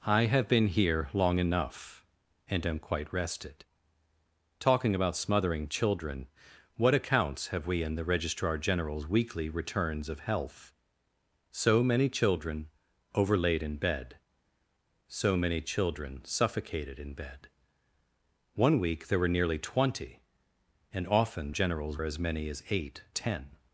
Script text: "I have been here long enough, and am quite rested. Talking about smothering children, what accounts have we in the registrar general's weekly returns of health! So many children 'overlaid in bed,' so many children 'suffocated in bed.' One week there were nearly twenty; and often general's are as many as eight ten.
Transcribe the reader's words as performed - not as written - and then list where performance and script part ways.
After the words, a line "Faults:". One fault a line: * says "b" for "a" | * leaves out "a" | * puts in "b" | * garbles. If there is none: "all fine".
"I have been here long enough, and am quite rested. Talking about smothering children, what accounts have we in the registrar general's weekly returns of health! So many children 'overlaid in bed,' so many children 'suffocated in bed.' One week there were nearly twenty; and often general's are as many as eight ten.
Faults:
all fine